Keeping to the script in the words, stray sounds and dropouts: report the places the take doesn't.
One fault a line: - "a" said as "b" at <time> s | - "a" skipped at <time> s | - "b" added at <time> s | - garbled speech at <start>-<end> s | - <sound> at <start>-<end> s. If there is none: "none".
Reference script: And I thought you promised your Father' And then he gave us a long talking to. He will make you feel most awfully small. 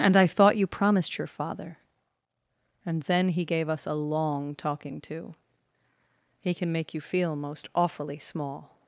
- "will" said as "can" at 6.5 s